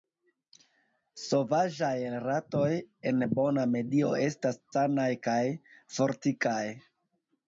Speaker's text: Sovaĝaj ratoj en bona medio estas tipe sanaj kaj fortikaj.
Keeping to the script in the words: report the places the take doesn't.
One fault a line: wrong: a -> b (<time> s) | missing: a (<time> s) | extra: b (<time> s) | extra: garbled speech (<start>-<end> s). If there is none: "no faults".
missing: tipe (4.6 s)